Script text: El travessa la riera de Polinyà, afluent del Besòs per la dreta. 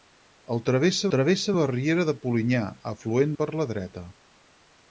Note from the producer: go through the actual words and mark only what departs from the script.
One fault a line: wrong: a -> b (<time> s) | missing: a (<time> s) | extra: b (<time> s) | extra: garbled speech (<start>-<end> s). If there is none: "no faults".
extra: travessa (1.1 s)
missing: del Besòs (3.3 s)